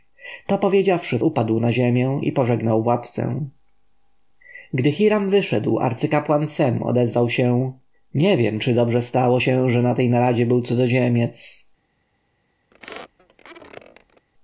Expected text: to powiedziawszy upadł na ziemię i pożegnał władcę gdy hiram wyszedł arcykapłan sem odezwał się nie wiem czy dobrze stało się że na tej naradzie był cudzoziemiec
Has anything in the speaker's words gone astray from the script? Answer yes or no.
no